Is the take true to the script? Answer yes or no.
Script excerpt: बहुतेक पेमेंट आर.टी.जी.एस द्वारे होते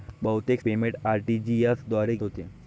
yes